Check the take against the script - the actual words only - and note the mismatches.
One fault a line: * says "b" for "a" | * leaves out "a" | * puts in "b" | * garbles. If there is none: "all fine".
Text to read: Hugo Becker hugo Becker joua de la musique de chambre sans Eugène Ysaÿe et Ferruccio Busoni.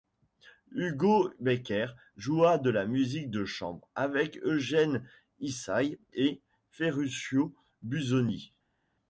* leaves out "hugo Becker"
* says "avec" for "sans"